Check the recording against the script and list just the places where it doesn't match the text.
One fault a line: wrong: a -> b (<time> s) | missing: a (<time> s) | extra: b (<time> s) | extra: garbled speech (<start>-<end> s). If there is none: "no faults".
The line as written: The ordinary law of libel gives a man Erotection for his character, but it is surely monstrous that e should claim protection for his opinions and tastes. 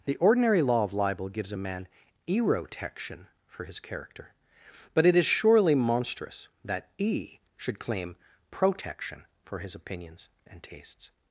no faults